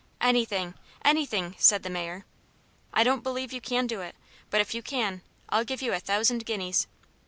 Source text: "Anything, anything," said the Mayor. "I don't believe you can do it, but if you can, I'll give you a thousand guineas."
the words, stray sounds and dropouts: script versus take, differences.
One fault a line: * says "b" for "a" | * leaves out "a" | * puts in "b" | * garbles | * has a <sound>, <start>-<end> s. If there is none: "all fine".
all fine